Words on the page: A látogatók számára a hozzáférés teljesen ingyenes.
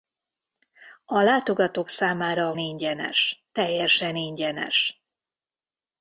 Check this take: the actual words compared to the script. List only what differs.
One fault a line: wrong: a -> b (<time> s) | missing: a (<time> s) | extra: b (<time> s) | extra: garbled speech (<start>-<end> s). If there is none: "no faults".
wrong: hozzáférés -> ingyenes (2.6 s)